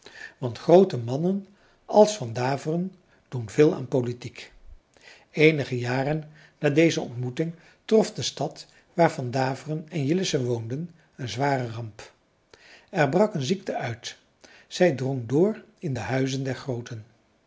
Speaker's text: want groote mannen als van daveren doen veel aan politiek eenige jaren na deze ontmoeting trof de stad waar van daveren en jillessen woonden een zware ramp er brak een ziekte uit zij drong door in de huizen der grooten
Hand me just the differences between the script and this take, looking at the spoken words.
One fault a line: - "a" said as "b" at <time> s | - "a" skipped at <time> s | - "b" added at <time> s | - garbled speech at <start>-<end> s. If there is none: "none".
none